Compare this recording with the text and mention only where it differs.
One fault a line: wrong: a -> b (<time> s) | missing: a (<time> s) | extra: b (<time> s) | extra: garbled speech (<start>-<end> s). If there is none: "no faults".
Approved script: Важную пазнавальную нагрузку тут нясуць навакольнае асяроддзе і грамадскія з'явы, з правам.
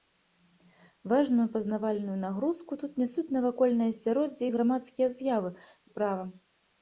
no faults